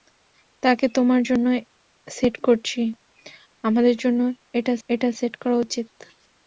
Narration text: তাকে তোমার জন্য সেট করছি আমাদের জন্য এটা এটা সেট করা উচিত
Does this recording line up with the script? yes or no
yes